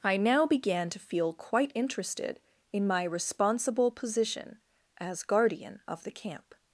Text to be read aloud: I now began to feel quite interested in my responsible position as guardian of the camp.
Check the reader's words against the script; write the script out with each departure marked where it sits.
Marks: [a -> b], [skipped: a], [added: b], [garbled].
I now began to feel quite interested in my responsible position as guardian of the camp.